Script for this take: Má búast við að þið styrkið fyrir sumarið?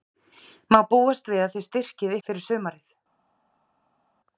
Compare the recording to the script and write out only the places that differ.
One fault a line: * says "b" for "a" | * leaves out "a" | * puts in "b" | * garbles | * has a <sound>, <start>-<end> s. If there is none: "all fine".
all fine